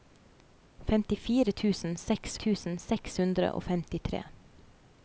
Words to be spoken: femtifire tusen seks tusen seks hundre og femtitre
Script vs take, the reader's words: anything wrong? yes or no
no